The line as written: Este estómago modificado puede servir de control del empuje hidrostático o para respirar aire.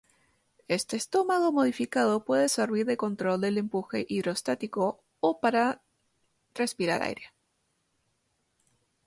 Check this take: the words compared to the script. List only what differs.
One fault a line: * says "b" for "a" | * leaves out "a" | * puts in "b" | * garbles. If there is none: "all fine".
all fine